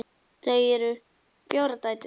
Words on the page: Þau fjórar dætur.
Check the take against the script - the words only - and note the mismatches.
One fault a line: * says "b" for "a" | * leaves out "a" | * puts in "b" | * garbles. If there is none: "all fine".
all fine